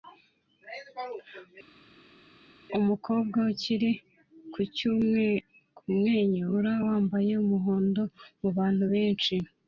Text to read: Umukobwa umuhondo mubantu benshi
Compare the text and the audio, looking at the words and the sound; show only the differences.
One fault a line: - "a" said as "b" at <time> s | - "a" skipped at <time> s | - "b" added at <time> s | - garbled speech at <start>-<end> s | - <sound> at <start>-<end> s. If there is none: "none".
- "ukiri kumwenyura wambaye" added at 3.5 s